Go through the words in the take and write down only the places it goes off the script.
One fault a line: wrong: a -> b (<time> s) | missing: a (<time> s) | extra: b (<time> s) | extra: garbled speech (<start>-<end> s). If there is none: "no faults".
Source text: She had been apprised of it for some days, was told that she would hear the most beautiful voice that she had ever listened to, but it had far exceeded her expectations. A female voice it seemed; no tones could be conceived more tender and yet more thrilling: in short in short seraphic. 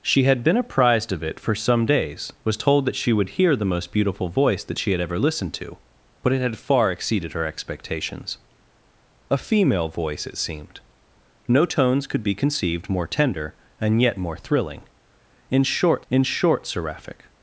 no faults